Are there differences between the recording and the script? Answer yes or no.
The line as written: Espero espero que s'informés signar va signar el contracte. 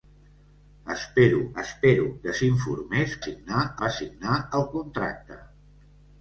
no